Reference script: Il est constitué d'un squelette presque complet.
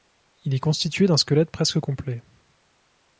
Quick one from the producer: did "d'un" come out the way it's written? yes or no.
yes